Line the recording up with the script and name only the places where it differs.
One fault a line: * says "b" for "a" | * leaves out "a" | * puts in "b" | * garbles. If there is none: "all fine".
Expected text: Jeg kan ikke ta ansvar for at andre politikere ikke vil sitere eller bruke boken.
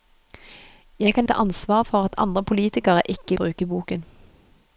* leaves out "ikke"
* leaves out "vil sitere eller"